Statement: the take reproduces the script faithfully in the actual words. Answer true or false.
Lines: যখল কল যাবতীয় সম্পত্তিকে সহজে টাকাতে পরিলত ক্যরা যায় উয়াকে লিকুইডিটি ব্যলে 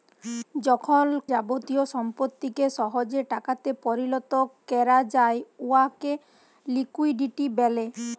false